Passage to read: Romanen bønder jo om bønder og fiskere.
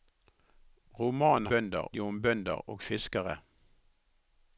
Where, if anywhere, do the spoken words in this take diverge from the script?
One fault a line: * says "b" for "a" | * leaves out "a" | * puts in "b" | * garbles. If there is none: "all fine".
all fine